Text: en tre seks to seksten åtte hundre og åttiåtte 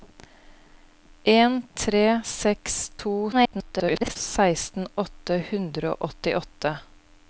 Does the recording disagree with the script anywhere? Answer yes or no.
yes